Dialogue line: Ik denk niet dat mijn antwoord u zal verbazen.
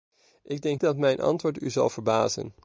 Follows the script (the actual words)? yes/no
no